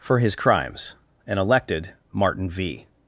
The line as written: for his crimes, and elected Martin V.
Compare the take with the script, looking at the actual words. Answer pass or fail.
pass